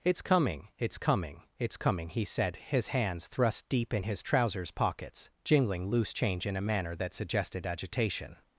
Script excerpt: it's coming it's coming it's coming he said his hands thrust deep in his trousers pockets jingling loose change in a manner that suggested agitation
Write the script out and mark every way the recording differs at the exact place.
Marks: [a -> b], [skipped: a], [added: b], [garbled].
it's coming it's coming it's coming he said his hands thrust deep in his trousers pockets jingling loose change in a manner that suggested agitation